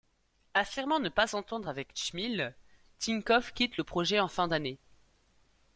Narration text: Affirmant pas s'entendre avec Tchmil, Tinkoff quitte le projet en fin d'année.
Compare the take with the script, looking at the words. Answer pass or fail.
fail